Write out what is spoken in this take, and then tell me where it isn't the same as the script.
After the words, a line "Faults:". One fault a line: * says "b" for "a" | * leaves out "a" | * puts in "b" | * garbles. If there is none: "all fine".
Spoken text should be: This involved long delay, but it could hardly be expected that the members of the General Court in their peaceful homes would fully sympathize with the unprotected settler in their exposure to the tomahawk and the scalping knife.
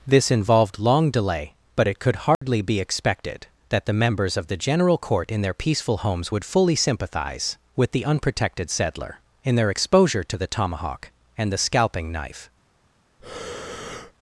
This involved long delay, but it could hardly be expected that the members of the General Court in their peaceful homes would fully sympathize with the unprotected settler in their exposure to the tomahawk and the scalping knife.
Faults:
all fine